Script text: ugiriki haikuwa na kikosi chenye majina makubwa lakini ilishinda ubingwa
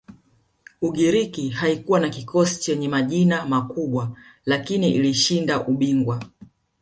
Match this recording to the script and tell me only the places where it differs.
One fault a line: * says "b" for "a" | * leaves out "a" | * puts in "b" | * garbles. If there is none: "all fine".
all fine